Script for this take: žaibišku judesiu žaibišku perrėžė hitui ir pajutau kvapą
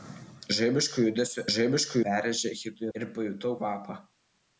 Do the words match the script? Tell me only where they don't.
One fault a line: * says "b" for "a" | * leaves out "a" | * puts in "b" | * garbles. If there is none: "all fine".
all fine